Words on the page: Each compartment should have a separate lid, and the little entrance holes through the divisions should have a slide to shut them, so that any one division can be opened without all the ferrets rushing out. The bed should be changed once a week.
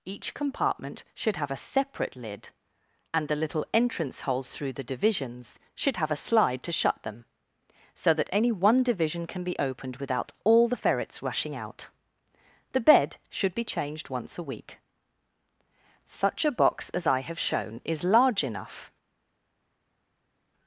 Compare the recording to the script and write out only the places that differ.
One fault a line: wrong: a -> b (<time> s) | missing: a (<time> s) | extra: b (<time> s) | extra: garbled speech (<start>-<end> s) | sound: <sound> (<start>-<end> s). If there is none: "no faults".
extra: Such a box as I have shown is large enough (16.1 s)